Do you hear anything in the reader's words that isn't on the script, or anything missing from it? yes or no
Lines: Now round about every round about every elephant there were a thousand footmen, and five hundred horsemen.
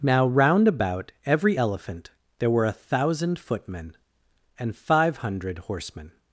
yes